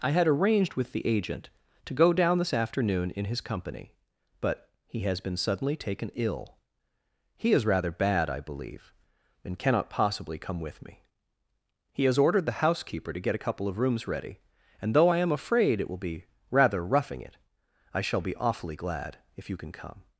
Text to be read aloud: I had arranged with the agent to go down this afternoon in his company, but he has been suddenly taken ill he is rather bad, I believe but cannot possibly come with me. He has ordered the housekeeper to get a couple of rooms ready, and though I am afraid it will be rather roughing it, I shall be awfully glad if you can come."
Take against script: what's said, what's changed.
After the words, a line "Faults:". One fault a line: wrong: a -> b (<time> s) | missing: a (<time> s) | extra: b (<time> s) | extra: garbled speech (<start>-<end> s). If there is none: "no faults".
I had arranged with the agent to go down this afternoon in his company, but he has been suddenly taken ill he is rather bad, I believe and cannot possibly come with me. He has ordered the housekeeper to get a couple of rooms ready, and though I am afraid it will be rather roughing it, I shall be awfully glad if you can come."
Faults:
wrong: but -> and (9.4 s)